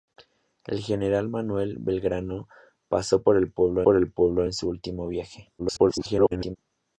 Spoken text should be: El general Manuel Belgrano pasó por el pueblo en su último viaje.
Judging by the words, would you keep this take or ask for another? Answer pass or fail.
fail